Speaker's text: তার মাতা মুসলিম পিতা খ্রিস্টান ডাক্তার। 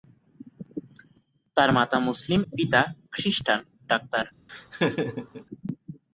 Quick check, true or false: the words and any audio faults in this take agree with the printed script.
false